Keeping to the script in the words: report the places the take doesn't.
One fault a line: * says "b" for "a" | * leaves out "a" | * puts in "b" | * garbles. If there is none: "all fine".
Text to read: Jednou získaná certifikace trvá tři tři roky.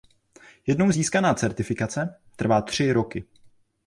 * leaves out "tři"